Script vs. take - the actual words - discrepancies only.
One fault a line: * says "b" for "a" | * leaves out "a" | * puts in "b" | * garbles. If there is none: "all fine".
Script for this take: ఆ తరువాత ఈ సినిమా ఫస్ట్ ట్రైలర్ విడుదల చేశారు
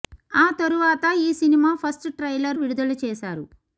all fine